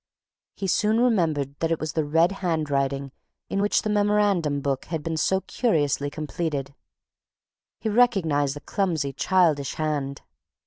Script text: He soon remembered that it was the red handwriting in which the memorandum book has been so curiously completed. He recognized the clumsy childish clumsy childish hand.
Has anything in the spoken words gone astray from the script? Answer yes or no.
yes